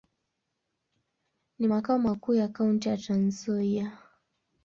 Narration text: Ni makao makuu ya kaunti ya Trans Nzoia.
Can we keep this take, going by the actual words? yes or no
yes